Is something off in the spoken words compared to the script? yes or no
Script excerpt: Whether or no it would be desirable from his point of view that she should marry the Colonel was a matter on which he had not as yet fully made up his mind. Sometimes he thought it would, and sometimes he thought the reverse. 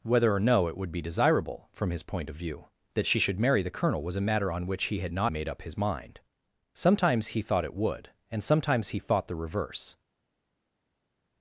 yes